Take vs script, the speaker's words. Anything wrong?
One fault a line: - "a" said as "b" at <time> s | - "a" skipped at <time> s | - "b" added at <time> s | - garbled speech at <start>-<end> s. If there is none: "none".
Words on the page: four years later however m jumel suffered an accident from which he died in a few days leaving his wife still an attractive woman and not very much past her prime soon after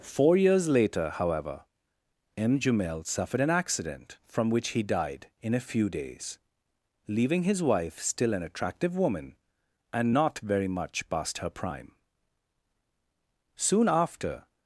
none